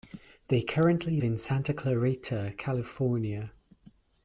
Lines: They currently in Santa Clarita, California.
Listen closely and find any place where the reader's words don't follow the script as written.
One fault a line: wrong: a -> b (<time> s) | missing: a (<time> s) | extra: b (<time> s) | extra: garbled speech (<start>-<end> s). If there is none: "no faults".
no faults